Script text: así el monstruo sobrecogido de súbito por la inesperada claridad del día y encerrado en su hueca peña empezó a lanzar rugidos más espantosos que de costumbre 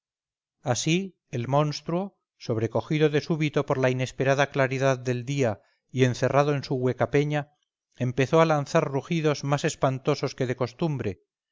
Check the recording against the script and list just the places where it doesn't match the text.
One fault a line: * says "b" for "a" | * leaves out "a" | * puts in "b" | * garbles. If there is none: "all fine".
all fine